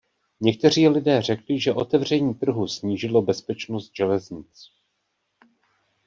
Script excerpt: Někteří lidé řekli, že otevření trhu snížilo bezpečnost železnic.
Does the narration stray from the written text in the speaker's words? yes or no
no